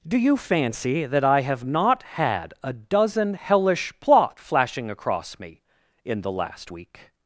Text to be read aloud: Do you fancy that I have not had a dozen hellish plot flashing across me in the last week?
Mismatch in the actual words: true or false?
false